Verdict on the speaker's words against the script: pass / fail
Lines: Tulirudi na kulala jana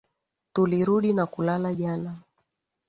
pass